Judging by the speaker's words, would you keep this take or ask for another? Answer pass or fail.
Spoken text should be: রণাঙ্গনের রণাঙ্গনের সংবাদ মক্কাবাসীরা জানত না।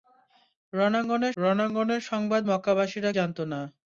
pass